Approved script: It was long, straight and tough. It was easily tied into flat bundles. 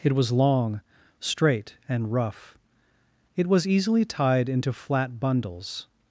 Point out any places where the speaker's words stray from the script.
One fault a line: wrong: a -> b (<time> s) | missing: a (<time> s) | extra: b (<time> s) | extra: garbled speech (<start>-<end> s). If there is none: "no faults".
wrong: tough -> rough (2.1 s)